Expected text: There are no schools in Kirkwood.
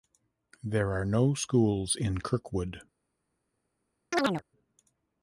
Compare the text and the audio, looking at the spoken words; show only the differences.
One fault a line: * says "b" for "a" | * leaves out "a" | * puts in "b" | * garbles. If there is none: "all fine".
all fine